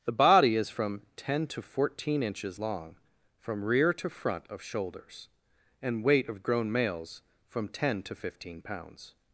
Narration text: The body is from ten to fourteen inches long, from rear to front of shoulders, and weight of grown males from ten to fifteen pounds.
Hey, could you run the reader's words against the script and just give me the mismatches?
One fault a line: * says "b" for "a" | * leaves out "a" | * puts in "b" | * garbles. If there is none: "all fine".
all fine